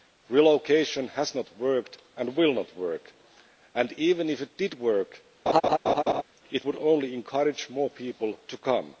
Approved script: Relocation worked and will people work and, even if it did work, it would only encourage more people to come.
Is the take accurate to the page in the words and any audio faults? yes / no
no